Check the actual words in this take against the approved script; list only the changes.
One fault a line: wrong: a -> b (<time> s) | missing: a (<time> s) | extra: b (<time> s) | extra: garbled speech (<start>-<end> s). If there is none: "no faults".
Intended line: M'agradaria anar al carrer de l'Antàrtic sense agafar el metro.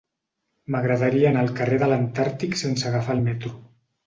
no faults